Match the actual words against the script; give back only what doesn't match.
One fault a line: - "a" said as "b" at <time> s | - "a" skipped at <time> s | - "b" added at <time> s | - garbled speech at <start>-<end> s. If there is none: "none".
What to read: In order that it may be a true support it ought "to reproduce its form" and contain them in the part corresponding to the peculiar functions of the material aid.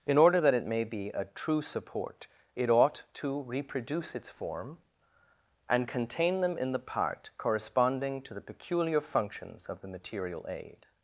none